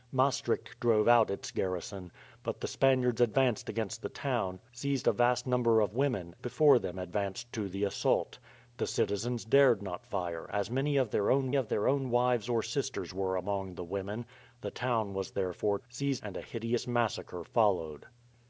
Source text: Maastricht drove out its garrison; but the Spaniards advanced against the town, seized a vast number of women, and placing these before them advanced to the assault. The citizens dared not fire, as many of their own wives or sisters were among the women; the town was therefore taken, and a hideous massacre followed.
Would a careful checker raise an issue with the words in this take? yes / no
yes